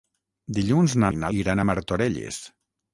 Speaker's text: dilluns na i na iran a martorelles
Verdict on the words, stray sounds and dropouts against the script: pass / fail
pass